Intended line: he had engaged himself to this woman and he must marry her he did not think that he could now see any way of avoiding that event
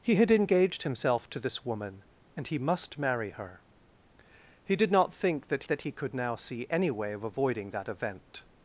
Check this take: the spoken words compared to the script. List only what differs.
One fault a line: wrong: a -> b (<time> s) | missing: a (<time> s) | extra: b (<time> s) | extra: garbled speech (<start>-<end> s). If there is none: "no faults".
extra: that (5.7 s)